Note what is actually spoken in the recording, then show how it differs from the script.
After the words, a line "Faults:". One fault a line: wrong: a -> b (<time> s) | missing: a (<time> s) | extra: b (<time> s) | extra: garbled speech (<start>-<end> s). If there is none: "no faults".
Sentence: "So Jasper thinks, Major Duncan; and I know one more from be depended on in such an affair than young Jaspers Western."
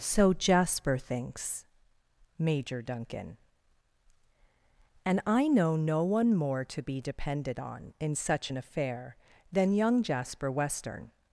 "So Jasper thinks, Major Duncan; and I know no one more to be depended on in such an affair than young Jasper Western."
Faults:
extra: no (5.8 s)
wrong: from -> to (6.7 s)
wrong: Jaspers -> Jasper (10.0 s)